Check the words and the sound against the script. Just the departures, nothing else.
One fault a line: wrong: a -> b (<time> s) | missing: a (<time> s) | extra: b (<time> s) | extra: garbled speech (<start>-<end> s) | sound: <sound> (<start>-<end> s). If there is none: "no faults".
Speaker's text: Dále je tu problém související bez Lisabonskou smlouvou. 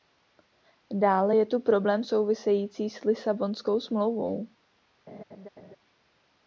wrong: bez -> s (2.9 s)
sound: laugh (5.1-5.8 s)